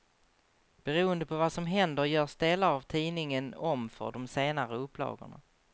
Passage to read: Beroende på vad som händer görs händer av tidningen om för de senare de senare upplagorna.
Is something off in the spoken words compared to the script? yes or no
yes